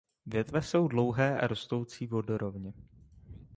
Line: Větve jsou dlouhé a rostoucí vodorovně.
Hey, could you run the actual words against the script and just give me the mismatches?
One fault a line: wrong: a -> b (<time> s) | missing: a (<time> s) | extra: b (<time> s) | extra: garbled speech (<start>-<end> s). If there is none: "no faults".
no faults